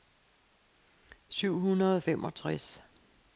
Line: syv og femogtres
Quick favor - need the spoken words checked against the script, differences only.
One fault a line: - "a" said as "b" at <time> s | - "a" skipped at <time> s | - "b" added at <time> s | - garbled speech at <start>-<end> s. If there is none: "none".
- "hundrede" added at 1.6 s